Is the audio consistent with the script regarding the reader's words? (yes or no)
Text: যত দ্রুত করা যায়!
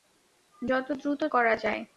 yes